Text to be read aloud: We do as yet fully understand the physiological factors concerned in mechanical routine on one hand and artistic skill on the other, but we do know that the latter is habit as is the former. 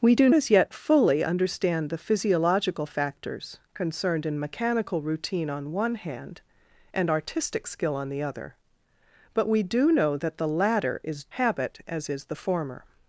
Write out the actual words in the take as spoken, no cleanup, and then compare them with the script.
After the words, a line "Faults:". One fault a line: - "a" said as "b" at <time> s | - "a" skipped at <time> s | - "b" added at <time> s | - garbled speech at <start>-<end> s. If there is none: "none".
We do as yet fully understand the physiological factors concerned in mechanical routine on one hand and artistic skill on the other, but we do know that the latter is habit as is the former.
Faults:
none